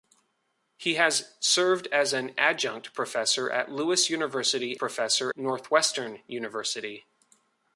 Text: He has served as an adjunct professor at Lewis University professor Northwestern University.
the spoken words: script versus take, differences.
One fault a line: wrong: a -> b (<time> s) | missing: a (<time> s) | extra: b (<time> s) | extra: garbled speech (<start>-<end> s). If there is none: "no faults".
no faults